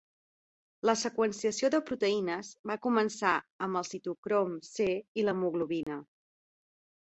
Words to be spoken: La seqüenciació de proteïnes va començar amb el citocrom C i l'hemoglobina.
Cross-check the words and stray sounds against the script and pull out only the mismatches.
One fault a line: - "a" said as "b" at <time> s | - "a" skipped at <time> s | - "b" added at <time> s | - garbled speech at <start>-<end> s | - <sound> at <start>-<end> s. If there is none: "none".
- dropout at 5.8-5.9 s